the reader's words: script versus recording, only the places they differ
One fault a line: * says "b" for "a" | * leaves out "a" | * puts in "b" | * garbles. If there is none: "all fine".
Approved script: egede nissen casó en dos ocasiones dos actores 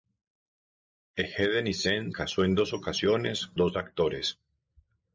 all fine